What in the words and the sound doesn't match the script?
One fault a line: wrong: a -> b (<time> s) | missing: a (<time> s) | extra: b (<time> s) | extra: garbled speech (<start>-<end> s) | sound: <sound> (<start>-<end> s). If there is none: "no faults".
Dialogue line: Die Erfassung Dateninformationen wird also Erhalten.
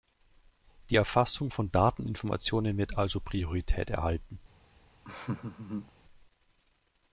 extra: von (1.5 s)
extra: Priorität (3.2 s)
sound: laugh (5.0-5.9 s)